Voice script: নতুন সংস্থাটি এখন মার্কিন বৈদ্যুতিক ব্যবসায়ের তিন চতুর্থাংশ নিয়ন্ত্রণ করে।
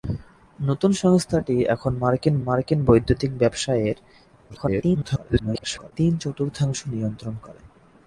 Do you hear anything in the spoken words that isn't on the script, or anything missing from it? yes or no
yes